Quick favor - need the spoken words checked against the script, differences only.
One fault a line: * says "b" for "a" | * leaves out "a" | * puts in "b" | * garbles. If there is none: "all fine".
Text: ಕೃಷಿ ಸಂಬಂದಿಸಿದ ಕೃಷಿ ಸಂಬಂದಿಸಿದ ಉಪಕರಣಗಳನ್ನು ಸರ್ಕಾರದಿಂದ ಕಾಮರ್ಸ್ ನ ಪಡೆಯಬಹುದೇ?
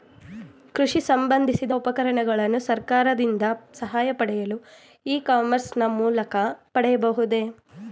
* says "ಉಪಕರಣಗಳನ್ನು ಸರ್ಕಾರದಿಂದ ಸಹಾಯ ಪಡೆಯಲು ಇ" for "ಕೃಷಿ ಸಂಬಂದಿಸಿದ ಉಪಕರಣಗಳನ್ನು ಸರ್ಕಾರದಿಂದ"
* puts in "ಮೂಲಕ"